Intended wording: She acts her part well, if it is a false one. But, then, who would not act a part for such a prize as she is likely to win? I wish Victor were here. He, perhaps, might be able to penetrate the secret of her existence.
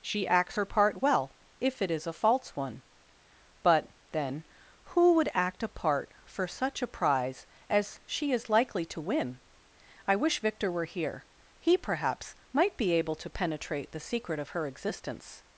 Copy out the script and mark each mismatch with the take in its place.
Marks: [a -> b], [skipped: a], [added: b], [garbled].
She acts her part well, if it is a false one. But, then, who would [skipped: not] act a part for such a prize as she is likely to win? I wish Victor were here. He, perhaps, might be able to penetrate the secret of her existence.